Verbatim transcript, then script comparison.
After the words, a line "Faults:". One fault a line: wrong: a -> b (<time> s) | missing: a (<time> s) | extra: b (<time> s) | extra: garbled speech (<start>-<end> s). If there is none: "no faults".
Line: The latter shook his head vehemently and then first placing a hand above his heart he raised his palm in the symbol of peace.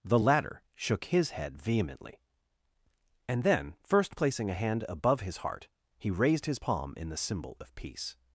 The latter shook his head vehemently and then first placing a hand above his heart he raised his palm in the symbol of peace.
Faults:
no faults